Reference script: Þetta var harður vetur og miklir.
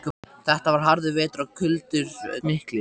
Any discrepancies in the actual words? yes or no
no